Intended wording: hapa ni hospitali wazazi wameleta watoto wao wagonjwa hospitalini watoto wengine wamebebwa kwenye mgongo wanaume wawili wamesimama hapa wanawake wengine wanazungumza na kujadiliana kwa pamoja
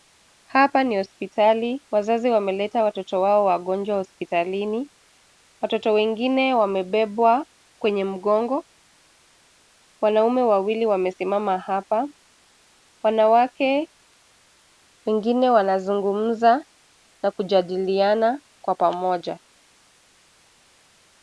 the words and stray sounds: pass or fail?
pass